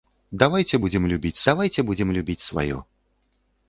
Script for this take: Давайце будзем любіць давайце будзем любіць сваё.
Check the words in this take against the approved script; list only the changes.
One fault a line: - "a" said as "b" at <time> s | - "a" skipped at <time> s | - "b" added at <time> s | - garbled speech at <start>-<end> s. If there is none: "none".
none